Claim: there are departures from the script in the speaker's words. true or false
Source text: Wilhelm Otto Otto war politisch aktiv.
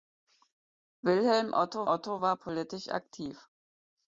false